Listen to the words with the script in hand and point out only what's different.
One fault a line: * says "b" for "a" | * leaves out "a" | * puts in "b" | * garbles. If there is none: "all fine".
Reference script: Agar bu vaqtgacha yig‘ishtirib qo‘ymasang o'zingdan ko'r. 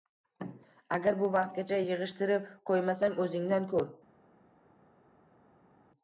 all fine